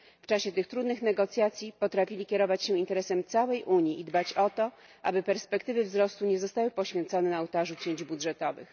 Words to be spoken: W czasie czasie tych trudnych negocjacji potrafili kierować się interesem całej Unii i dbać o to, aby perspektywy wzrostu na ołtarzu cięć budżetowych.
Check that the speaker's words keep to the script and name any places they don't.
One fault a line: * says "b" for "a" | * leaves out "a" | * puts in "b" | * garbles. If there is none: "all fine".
* leaves out "czasie"
* puts in "nie zostały poświęcone"